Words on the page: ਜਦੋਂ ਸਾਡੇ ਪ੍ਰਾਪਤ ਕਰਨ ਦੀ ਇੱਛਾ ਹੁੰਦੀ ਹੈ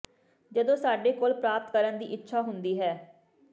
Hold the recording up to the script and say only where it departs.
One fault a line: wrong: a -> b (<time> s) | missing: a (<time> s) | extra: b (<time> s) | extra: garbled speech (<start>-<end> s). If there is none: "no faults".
extra: ਕੋਲ (1.1 s)